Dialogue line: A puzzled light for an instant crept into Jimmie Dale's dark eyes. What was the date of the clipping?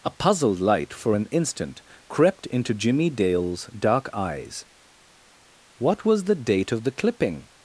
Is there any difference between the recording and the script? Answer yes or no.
no